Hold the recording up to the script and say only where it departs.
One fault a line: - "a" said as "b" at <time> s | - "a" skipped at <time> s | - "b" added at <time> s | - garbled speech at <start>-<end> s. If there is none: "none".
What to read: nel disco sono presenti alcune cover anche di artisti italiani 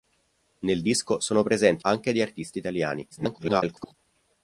- "alcune cover" skipped at 1.9 s
- garbled speech at 3.1-3.9 s